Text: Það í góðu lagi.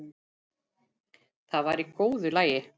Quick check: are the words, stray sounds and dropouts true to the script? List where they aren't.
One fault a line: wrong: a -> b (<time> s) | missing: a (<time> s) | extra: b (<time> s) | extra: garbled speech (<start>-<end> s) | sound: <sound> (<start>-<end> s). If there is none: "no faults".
extra: var (1.7 s)